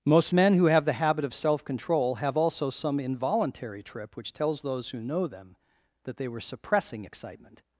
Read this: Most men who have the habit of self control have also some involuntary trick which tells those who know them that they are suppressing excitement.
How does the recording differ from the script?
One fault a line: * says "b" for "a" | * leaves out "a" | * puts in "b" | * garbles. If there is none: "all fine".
* says "trip" for "trick"
* says "were" for "are"